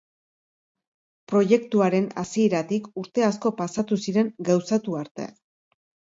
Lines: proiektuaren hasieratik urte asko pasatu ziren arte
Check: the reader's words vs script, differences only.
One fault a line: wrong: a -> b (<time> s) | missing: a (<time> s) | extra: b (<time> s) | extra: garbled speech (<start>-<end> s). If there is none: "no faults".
extra: gauzatu (4.5 s)